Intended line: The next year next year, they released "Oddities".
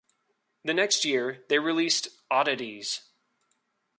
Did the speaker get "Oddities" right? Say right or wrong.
right